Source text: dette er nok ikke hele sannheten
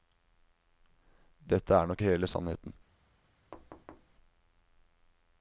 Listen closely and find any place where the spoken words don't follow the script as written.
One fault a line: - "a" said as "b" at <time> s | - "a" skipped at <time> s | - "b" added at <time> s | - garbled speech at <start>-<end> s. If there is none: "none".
- "ikke" skipped at 2.0 s